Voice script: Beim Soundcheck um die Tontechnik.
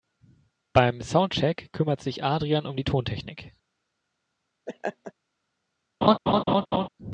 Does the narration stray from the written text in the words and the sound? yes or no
yes